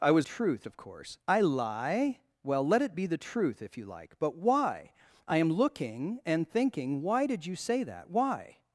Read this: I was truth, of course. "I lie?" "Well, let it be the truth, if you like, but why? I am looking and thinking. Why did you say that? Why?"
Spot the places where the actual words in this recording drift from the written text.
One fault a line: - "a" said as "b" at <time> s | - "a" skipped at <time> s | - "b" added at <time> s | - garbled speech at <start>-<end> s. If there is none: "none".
none